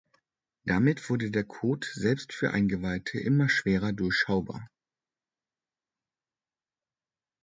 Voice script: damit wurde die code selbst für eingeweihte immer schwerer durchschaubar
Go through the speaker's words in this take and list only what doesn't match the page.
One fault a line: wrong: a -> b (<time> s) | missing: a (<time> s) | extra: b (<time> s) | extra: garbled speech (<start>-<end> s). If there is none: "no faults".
wrong: die -> der (1.3 s)